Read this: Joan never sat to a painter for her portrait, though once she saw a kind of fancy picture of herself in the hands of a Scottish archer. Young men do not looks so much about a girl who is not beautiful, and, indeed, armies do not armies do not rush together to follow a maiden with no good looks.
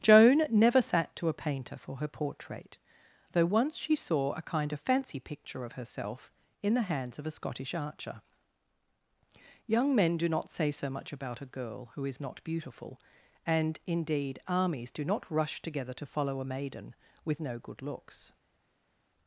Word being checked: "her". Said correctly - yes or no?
yes